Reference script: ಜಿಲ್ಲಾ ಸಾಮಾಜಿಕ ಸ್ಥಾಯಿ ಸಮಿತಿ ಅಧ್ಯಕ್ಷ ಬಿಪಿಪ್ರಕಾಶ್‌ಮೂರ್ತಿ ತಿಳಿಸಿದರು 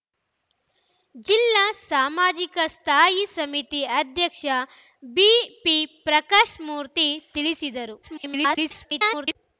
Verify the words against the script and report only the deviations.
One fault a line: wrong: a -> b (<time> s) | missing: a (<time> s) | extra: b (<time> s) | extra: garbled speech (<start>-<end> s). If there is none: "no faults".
extra: garbled speech (8.0-9.4 s)